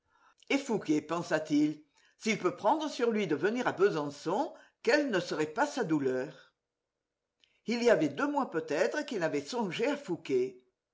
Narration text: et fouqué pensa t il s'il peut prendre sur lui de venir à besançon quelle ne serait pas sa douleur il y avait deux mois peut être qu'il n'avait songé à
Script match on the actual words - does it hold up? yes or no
yes